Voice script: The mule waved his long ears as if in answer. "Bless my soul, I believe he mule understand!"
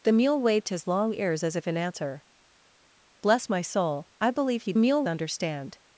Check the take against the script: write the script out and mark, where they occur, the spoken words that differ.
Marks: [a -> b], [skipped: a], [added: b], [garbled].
The mule waved his long ears as if in answer. "Bless my soul, I believe he mule understand!"